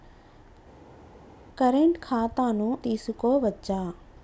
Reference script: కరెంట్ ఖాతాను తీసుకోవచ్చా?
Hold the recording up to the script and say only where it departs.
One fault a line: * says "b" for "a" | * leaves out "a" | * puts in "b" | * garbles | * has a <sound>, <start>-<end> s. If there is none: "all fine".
all fine